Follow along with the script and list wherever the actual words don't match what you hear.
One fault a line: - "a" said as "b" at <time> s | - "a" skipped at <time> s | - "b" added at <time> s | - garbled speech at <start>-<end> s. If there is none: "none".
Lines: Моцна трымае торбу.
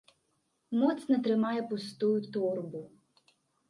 - "пустую" added at 1.7 s